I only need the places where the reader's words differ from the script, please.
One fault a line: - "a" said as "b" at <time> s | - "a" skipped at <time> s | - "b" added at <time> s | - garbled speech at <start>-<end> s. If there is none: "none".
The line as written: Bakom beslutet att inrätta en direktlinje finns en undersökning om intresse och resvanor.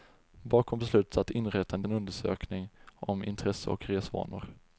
- "direktlinje finns" skipped at 1.8 s